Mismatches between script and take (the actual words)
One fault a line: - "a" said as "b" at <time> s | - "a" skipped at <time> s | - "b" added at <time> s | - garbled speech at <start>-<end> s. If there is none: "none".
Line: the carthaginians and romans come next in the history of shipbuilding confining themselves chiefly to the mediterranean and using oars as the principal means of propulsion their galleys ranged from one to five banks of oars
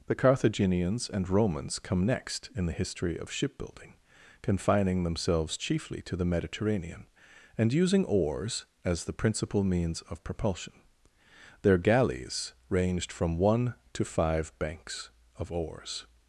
none